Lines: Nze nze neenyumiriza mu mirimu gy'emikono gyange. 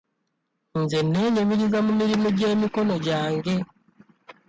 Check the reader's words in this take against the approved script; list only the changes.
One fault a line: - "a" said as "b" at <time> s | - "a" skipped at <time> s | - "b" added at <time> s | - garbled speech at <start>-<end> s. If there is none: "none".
- "nze" skipped at 1.0 s